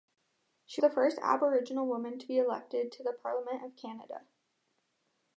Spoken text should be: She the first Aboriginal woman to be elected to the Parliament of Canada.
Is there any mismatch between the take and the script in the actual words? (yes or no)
no